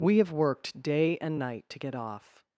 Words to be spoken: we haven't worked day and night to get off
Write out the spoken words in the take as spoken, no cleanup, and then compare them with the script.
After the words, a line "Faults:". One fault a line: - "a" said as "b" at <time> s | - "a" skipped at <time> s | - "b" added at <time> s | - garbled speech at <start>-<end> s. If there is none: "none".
we have worked day and night to get off
Faults:
- "haven't" said as "have" at 0.2 s